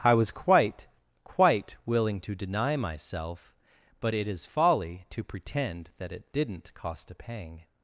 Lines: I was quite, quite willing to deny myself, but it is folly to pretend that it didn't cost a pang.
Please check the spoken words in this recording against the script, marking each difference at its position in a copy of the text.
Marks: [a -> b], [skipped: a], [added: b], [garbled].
I was quite, quite willing to deny myself, but it is folly to pretend that it didn't cost a pang.